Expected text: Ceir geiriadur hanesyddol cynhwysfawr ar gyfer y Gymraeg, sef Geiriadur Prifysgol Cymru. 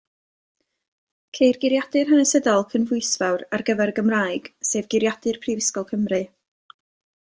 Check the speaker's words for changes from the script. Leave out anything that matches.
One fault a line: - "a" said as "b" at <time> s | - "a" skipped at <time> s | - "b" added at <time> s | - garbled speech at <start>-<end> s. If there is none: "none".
none